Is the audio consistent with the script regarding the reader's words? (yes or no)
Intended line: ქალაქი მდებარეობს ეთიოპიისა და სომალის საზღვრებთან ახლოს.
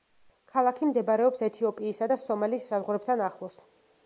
yes